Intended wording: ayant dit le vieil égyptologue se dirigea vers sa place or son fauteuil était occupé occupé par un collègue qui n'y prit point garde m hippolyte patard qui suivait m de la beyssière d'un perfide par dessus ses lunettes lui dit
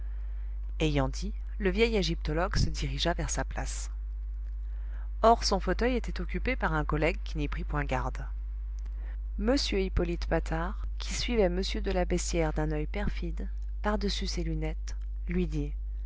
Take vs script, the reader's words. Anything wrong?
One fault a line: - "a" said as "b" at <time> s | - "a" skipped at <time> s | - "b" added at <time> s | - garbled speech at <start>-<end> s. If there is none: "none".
- "occupé" skipped at 6.5 s
- "oeil" added at 12.7 s